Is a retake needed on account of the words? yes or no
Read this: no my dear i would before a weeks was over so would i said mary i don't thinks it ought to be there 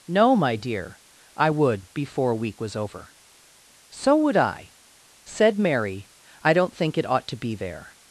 yes